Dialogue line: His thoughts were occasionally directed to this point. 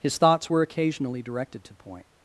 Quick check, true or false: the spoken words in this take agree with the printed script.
false